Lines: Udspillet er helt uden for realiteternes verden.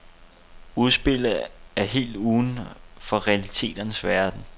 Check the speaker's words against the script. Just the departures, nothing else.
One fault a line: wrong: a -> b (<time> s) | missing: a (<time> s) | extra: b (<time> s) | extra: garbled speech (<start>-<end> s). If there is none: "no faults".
no faults